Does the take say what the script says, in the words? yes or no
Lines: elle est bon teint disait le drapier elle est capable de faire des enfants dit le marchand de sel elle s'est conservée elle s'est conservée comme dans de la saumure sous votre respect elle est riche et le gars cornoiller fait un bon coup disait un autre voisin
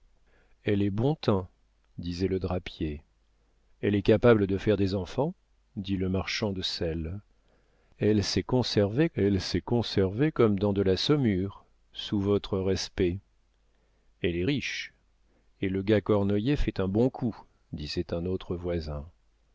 yes